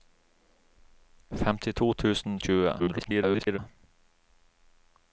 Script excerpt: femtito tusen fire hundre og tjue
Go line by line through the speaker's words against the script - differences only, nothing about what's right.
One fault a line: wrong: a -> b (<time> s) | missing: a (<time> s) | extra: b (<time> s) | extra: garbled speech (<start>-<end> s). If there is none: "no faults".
missing: fire hundre (2.4 s)
extra: garbled speech (2.8-3.6 s)